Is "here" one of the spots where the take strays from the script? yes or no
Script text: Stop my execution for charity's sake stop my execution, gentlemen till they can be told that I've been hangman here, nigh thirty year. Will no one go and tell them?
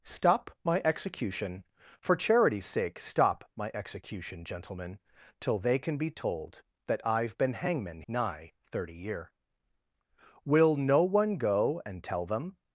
yes